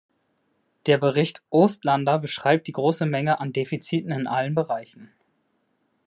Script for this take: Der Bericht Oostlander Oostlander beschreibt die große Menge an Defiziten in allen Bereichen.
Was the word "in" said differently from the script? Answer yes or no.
no